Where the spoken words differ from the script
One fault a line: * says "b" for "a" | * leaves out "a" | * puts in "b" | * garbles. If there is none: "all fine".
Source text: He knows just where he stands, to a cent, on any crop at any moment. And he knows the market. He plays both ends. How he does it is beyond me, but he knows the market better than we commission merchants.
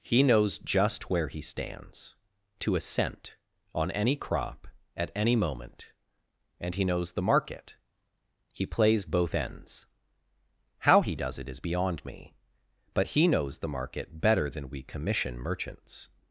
all fine